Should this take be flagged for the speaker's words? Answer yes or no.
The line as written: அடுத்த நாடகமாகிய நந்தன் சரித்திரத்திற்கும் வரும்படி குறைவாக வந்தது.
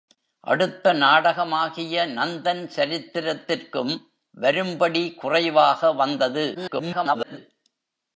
yes